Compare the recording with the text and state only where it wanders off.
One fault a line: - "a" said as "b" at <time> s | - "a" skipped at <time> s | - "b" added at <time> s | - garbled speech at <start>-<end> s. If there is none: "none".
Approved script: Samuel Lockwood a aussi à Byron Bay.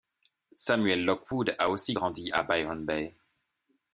- "grandi" added at 1.9 s